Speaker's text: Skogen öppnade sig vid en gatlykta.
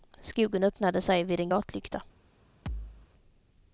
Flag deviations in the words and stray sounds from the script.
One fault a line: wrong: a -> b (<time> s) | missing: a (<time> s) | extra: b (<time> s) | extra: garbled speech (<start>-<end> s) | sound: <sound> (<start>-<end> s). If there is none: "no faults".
sound: thud (2.7-3.1 s)